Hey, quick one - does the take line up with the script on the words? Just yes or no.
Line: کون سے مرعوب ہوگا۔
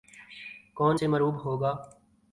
yes